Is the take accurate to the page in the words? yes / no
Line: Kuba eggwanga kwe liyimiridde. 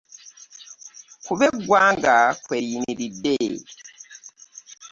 yes